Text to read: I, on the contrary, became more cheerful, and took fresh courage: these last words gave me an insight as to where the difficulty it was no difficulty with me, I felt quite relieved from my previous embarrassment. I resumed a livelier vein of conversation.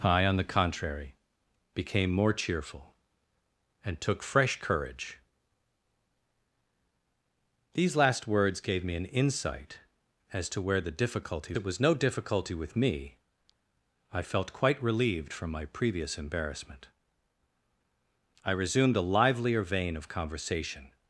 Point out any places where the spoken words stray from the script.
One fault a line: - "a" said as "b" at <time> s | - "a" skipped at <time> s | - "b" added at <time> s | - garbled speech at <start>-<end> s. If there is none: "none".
none